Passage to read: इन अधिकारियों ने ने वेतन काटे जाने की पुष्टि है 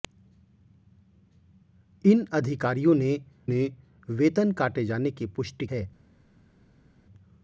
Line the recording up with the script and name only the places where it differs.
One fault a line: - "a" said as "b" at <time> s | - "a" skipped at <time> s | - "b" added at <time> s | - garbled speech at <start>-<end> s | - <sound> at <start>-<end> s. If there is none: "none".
none